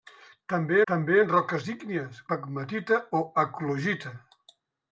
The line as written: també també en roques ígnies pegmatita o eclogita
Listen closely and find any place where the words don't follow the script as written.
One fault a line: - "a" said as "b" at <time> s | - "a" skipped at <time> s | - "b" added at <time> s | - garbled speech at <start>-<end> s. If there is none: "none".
none